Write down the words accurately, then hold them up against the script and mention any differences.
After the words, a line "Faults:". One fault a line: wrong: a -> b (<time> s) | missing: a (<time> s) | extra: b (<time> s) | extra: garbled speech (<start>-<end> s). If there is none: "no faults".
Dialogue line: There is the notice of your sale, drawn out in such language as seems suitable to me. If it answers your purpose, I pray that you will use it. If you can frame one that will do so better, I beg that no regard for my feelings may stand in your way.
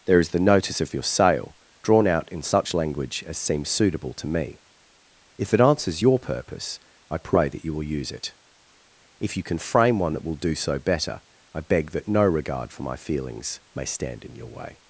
There is the notice of your sale, drawn out in such language as seems suitable to me. If it answers your purpose, I pray that you will use it. If you can frame one that will do so better, I beg that no regard for my feelings may stand in your way.
Faults:
no faults